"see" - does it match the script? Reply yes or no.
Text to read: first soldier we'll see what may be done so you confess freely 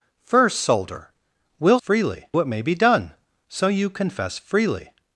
no